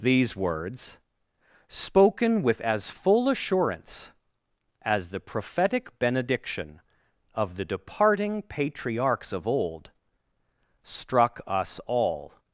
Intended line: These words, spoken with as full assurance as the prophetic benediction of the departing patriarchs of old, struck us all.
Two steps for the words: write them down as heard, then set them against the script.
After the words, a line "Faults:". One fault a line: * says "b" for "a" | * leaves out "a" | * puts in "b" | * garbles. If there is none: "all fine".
These words, spoken with as full assurance as the prophetic benediction of the departing patriarchs of old, struck us all.
Faults:
all fine